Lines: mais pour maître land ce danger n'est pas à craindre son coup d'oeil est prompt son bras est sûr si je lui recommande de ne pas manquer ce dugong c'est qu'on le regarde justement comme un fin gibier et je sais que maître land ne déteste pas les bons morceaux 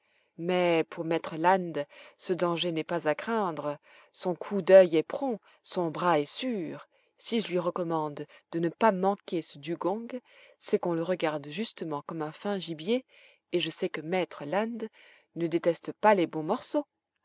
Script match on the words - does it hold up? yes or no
yes